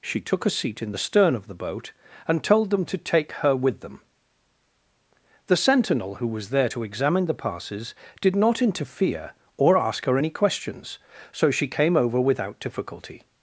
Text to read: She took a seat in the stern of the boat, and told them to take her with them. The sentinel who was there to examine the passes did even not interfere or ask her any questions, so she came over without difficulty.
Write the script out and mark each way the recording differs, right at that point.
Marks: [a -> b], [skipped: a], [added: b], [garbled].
She took a seat in the stern of the boat, and told them to take her with them. The sentinel who was there to examine the passes did [skipped: even] not interfere or ask her any questions, so she came over without difficulty.